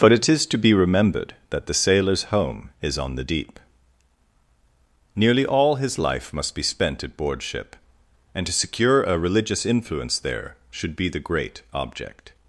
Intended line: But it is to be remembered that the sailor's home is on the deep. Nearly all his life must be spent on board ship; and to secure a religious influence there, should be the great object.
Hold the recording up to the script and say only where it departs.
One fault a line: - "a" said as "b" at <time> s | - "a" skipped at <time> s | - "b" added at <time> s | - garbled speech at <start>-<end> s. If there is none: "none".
- "on" said as "at" at 7.0 s